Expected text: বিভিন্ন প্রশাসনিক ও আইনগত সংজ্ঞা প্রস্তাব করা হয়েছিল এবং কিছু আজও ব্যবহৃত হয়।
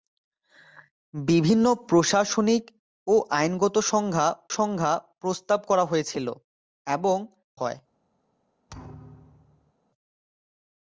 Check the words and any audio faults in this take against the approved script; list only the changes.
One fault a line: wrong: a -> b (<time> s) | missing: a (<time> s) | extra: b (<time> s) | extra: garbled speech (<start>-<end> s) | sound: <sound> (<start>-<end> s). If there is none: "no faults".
extra: সংজ্ঞা (4.6 s)
missing: কিছু আজও ব্যবহৃত (7.2 s)
sound: thud (8.7-9.7 s)